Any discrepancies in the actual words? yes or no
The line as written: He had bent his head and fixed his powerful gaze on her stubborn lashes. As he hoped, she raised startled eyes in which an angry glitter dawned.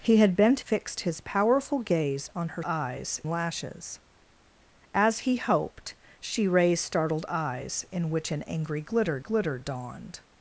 yes